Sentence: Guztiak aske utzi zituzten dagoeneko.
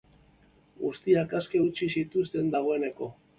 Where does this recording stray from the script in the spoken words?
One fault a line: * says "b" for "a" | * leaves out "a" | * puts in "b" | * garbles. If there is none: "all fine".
all fine